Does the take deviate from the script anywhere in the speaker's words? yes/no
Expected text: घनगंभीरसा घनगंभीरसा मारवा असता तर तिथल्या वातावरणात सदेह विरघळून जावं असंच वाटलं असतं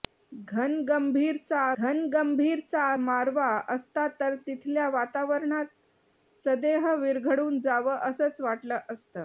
no